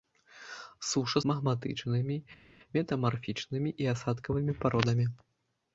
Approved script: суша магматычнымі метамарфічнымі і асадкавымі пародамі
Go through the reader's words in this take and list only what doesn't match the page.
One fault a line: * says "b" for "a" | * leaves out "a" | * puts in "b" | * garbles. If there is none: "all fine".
all fine